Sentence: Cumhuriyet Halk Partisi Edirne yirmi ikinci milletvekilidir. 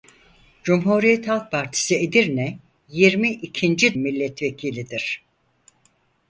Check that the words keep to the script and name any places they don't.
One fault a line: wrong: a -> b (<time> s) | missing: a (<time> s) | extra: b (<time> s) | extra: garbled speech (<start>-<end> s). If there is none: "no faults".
no faults